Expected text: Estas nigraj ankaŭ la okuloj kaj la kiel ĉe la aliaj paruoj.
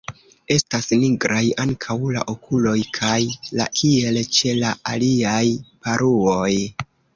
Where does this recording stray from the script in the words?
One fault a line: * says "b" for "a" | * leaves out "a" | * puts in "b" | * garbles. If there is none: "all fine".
all fine